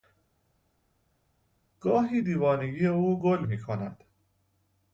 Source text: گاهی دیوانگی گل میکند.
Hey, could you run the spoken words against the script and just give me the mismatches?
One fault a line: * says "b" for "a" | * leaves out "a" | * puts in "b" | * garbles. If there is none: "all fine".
* puts in "او"